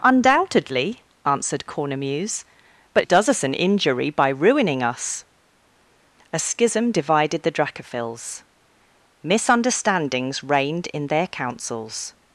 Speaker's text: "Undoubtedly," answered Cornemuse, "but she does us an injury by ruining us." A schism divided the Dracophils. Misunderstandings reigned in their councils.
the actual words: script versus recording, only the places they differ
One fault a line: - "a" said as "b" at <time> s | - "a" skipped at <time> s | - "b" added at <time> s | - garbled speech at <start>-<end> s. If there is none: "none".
- "she" skipped at 3.1 s